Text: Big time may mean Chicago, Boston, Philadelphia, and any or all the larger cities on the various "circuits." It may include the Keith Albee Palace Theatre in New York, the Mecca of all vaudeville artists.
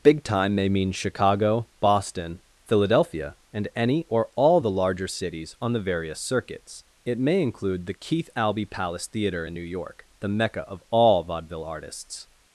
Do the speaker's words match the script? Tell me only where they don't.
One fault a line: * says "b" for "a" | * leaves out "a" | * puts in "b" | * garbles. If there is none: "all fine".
all fine